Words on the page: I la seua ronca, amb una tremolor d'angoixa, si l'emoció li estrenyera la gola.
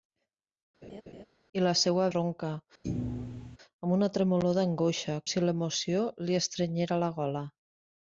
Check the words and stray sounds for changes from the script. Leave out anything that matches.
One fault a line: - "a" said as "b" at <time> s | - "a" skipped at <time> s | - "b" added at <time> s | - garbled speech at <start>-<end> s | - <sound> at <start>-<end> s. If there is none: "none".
- laugh at 0.8-1.2 s
- thud at 2.8-3.6 s